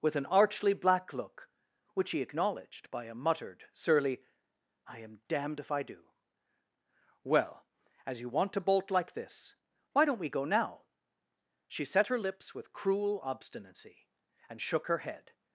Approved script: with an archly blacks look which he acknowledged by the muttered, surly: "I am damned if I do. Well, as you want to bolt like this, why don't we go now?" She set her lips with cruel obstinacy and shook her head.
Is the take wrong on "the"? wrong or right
wrong